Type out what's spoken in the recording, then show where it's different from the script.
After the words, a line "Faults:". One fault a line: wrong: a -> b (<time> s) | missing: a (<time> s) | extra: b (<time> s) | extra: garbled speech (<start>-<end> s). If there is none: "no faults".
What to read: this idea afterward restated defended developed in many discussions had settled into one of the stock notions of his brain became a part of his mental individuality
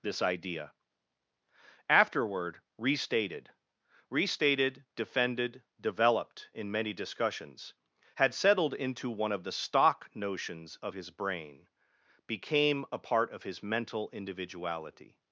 this idea afterward restated restated defended developed in many discussions had settled into one of the stock notions of his brain became a part of his mental individuality
Faults:
extra: restated (4.1 s)